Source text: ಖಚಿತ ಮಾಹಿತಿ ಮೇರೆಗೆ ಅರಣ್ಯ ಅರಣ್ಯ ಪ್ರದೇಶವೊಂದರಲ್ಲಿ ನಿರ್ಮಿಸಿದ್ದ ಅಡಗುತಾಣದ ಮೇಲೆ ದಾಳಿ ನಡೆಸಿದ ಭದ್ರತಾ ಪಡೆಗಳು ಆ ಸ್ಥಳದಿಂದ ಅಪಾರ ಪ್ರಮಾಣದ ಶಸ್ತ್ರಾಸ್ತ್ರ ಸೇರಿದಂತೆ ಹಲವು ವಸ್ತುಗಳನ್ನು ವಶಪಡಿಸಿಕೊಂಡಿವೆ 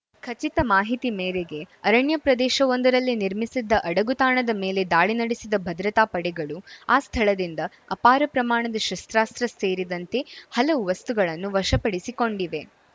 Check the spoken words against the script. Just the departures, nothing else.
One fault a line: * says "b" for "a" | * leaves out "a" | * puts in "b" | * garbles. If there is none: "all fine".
* leaves out "ಅರಣ್ಯ"